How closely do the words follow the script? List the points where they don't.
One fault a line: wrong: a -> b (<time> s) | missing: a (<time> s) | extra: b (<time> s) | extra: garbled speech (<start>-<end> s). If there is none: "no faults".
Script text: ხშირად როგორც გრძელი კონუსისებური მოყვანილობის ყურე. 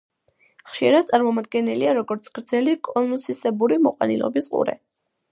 extra: წარმოდგენილია (1.1 s)